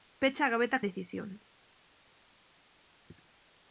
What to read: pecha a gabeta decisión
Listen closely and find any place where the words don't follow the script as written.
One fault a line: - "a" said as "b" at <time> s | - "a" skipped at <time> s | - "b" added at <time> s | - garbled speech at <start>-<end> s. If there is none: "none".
none